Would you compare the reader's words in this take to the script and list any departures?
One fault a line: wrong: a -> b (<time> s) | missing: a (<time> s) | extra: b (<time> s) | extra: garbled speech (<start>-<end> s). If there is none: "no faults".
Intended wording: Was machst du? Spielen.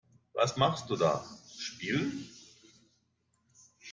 extra: da (0.9 s)